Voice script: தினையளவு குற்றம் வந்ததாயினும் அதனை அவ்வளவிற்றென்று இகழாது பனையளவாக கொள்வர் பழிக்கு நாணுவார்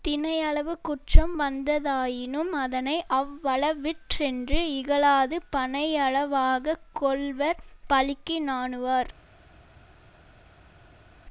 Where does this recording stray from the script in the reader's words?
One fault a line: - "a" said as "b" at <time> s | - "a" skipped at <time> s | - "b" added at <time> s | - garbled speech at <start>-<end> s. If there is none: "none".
none